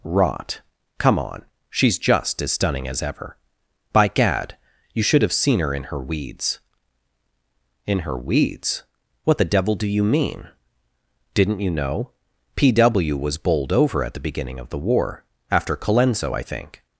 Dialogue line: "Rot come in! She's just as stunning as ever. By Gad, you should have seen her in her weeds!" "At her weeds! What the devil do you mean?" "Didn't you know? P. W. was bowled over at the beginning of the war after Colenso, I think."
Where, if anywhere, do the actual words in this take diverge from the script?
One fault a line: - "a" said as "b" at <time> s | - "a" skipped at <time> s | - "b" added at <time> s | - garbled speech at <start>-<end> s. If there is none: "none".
- "in" said as "on" at 1.2 s
- "At" said as "In" at 7.9 s